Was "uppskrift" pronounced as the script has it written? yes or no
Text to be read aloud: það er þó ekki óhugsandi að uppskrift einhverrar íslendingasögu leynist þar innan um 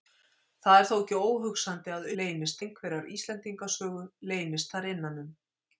no